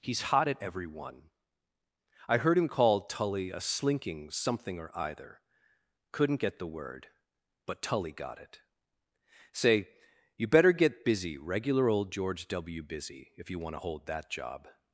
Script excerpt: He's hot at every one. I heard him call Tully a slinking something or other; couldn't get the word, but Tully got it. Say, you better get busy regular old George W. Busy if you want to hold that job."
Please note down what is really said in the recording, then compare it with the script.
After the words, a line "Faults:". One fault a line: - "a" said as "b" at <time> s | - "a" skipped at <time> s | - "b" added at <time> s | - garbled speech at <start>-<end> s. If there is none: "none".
He's hot at every one. I heard him call Tully a slinking something or either; couldn't get the word, but Tully got it. Say, you better get busy regular old George W. Busy if you want to hold that job."
Faults:
- "other" said as "either" at 5.0 s